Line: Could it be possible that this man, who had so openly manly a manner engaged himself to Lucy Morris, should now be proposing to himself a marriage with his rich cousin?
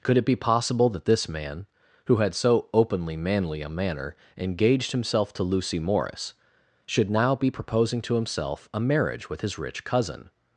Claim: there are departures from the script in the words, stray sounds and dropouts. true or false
false